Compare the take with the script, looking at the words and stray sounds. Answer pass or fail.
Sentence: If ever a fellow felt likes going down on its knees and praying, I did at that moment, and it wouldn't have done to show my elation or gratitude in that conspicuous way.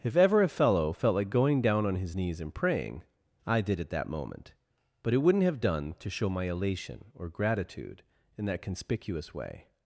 fail